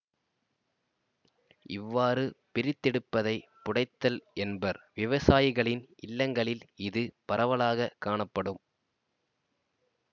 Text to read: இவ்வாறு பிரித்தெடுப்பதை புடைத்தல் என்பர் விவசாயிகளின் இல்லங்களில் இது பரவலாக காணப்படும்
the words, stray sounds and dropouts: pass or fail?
pass